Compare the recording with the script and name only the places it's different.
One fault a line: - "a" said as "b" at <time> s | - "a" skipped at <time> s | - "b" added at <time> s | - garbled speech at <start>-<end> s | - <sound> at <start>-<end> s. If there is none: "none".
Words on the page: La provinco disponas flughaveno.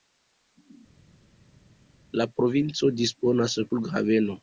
none